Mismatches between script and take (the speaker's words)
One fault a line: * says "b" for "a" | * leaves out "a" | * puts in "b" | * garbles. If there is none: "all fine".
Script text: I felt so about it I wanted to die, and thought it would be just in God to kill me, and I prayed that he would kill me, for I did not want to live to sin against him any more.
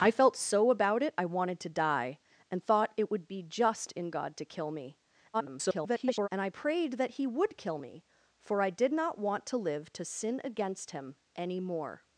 * garbles